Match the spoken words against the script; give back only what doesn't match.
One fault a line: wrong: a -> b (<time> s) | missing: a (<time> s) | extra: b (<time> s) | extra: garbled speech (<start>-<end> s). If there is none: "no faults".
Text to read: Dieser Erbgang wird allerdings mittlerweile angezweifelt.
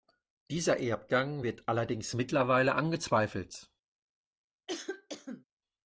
no faults